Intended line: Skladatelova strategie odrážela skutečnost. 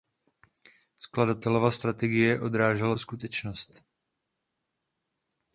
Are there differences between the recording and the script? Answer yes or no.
no